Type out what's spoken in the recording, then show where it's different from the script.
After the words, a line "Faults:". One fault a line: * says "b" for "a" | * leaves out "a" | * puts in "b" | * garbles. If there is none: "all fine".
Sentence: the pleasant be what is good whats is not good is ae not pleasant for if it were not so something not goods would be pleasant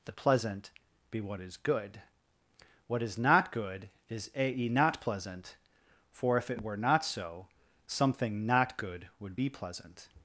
the pleasant be what is good what is not good is ae not pleasant for if it were not so something not good would be pleasant
Faults:
* says "what" for "whats"
* says "good" for "goods"